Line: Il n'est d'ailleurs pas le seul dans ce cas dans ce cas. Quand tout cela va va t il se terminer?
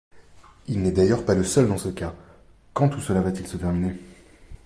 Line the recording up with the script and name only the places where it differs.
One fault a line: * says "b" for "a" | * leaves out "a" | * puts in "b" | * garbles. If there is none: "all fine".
* leaves out "dans ce cas"
* leaves out "va"